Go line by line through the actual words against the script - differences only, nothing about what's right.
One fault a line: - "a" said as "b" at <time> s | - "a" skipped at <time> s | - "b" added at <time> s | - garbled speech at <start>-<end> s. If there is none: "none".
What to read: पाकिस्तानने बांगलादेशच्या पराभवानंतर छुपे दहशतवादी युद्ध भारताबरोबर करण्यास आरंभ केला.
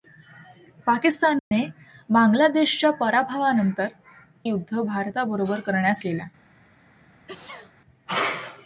- "छुपे दहशतवादी" skipped at 3.9 s
- "आरंभ" skipped at 6.0 s